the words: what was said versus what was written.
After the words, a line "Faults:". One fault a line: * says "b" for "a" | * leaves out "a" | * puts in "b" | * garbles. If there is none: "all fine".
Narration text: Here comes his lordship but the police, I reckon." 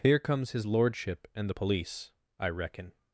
Here comes his lordship and the police, I reckon."
Faults:
* says "and" for "but"